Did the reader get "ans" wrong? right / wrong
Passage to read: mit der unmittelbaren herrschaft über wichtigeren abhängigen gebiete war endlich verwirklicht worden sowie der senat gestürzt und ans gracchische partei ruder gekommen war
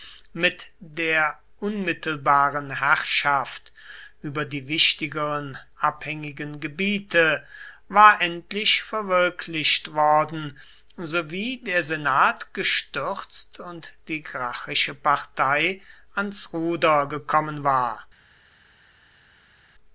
wrong